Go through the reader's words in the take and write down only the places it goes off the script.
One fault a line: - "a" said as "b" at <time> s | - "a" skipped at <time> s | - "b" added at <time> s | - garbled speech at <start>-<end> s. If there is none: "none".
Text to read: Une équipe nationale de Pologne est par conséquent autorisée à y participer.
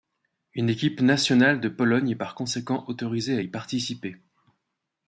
none